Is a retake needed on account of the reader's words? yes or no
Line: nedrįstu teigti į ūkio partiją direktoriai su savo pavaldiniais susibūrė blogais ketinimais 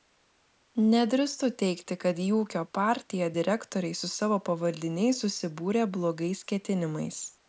yes